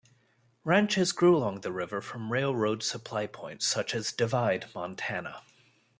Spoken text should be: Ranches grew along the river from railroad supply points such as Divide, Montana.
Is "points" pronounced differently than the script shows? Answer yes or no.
no